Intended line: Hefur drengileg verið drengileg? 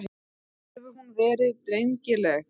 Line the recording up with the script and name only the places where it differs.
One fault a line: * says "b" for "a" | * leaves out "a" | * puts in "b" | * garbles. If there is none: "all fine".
* says "hún" for "drengileg"